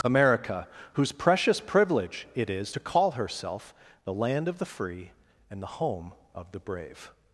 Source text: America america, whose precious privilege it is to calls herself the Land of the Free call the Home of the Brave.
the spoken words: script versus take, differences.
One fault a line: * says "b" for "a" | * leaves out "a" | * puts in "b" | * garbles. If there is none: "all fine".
* leaves out "america"
* says "call" for "calls"
* says "and" for "call"